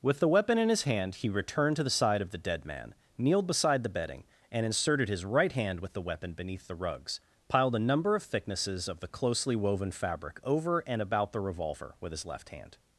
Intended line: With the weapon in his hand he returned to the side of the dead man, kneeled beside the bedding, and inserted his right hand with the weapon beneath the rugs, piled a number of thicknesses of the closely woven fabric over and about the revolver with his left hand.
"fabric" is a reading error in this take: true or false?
false